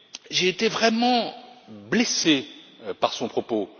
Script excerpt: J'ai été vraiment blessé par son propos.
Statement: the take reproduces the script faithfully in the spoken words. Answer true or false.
true